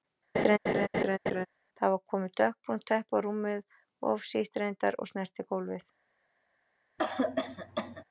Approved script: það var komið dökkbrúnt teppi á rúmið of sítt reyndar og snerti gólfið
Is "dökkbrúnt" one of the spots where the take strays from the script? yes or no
no